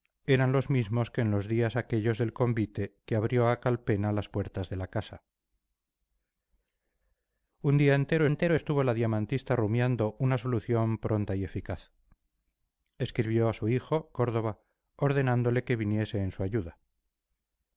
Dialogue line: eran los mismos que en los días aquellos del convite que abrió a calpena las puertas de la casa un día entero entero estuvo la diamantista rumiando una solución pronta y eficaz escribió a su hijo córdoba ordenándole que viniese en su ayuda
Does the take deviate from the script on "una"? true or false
false